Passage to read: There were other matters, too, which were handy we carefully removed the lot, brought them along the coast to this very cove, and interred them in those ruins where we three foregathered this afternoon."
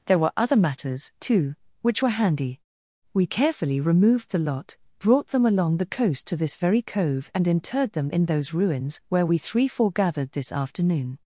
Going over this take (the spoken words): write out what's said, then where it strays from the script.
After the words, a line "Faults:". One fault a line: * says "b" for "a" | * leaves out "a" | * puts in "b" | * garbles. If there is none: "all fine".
There were other matters, too, which were handy we carefully removed the lot, brought them along the coast to this very cove, and interred them in those ruins where we three foregathered this afternoon."
Faults:
all fine